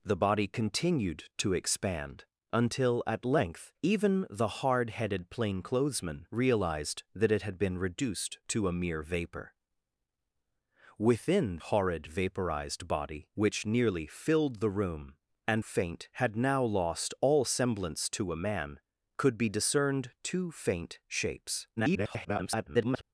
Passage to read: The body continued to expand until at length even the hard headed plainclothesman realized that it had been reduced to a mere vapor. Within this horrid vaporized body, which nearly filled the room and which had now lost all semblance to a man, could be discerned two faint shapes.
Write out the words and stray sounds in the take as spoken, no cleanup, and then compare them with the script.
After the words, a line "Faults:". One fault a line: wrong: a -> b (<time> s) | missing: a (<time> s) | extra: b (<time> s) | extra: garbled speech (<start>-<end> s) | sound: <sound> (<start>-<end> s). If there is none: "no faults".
The body continued to expand until at length even the hard headed plainclothesman realized that it had been reduced to a mere vapor. Within horrid vaporized body, which nearly filled the room and faint had now lost all semblance to a man, could be discerned two faint shapes. [garbled]
Faults:
missing: this (11.6 s)
wrong: which -> faint (15.6 s)
extra: garbled speech (21.8-23.0 s)